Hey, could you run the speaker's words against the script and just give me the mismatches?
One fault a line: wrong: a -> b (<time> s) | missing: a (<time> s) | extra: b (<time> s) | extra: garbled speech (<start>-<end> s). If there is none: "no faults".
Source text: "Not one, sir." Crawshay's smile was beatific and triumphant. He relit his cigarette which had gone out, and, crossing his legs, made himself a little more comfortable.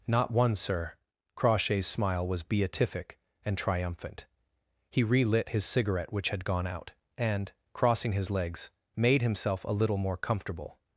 no faults